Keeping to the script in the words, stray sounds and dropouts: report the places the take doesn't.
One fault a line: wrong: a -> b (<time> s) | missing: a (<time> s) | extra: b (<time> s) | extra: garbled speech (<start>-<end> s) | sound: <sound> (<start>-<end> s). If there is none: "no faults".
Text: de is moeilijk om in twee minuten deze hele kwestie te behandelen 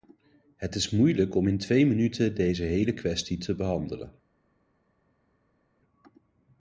wrong: de -> het (0.6 s)